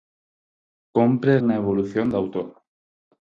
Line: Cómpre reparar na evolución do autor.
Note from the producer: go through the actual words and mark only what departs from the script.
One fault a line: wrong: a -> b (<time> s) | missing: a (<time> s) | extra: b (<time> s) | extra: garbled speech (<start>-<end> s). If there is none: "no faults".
missing: reparar (1.3 s)